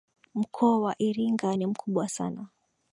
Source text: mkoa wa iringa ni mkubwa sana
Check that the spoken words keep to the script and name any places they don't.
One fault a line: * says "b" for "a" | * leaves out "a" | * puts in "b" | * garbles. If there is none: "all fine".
all fine